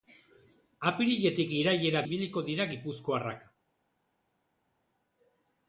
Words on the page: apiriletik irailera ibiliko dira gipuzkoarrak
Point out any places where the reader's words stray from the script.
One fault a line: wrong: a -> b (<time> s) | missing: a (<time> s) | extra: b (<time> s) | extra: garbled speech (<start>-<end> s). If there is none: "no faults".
no faults